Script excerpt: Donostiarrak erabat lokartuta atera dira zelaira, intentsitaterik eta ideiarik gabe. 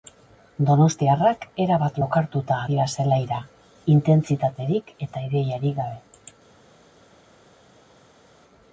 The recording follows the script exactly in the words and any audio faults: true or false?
false